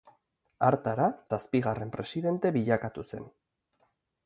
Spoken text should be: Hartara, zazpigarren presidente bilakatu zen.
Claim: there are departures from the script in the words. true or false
false